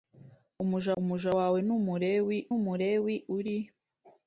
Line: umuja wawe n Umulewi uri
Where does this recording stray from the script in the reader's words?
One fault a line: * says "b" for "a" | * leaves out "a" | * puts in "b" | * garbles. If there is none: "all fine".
* puts in "umuja"
* puts in "Umulewi"